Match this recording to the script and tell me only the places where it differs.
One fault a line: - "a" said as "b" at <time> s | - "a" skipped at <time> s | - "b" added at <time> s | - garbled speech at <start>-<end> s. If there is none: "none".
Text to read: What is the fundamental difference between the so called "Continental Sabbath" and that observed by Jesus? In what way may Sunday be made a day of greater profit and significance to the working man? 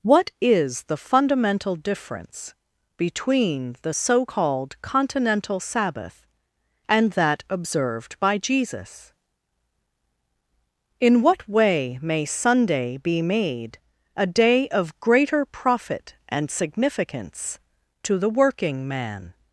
none